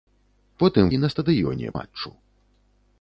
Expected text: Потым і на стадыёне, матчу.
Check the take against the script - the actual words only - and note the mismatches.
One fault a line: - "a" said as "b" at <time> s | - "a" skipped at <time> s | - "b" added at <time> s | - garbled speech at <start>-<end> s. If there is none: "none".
none